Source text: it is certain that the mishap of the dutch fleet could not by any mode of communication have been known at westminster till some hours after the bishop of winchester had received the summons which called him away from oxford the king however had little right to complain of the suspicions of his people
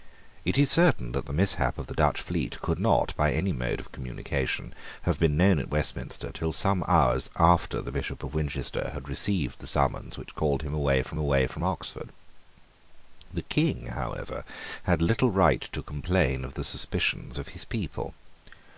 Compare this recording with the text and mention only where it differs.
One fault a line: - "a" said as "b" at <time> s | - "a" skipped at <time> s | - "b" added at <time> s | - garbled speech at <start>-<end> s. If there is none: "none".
- "away from" added at 11.2 s